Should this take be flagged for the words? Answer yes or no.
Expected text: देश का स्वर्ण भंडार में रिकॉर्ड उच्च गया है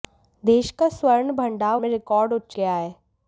no